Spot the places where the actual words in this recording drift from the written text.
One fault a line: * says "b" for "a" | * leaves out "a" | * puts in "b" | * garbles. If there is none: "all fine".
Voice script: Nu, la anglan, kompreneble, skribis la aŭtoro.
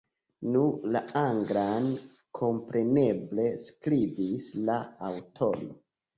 all fine